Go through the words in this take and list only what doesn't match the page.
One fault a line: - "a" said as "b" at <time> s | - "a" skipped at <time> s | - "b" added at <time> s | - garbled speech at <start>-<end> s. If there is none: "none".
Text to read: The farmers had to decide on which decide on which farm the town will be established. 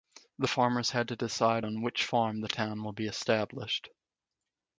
- "decide on which" skipped at 2.0 s